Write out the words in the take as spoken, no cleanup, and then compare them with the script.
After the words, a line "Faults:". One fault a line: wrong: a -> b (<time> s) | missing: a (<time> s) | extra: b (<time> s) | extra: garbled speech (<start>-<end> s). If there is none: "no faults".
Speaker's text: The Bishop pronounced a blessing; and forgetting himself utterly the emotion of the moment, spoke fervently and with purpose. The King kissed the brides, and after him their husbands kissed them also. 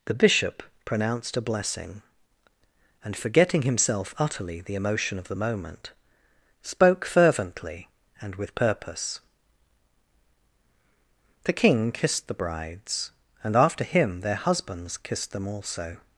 The Bishop pronounced a blessing; and forgetting himself utterly the emotion of the moment, spoke fervently and with purpose. The King kissed the brides, and after him their husbands kissed them also.
Faults:
no faults